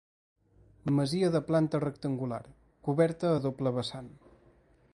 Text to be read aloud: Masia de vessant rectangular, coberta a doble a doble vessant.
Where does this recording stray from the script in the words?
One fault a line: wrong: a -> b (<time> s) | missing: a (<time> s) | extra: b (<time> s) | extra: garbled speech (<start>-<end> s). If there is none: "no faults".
wrong: vessant -> planta (1.5 s)
missing: a doble (3.8 s)